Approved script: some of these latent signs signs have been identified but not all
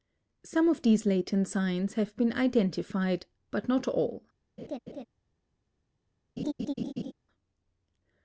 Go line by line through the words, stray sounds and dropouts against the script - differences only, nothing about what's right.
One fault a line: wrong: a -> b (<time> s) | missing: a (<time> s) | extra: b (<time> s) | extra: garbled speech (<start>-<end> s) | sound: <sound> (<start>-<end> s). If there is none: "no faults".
missing: signs (1.9 s)
sound: laugh (4.6-5.1 s)
sound: laugh (6.4-7.1 s)